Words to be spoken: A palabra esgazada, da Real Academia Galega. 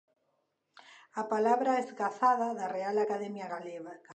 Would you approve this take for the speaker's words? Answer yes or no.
yes